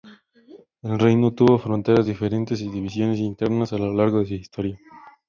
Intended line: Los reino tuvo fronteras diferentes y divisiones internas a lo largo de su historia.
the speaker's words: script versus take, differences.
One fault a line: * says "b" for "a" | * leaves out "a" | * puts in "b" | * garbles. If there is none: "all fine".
* says "El" for "Los"